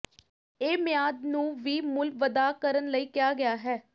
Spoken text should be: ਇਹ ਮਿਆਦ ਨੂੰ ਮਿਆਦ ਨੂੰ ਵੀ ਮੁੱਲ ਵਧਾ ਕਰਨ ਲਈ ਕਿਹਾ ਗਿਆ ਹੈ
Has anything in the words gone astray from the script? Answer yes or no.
yes